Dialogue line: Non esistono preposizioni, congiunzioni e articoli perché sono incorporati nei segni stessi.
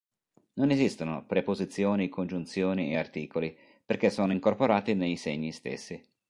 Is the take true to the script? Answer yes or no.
yes